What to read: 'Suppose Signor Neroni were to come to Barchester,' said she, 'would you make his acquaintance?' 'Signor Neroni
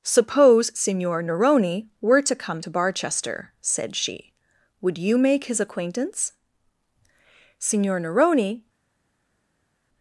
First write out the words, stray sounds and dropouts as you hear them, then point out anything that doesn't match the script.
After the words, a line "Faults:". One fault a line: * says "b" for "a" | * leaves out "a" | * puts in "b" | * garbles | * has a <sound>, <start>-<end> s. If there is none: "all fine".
'Suppose Signor Neroni were to come to Barchester,' said she, 'would you make his acquaintance?' 'Signor Neroni
Faults:
all fine